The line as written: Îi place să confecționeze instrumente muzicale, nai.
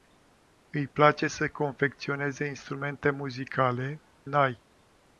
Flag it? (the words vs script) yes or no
no